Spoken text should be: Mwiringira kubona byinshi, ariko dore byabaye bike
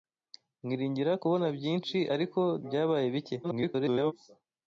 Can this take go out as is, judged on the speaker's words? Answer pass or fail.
fail